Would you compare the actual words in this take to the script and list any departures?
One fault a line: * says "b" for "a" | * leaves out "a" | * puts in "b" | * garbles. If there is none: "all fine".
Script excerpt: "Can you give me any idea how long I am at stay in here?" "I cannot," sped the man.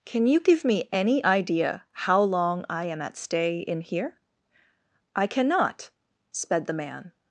all fine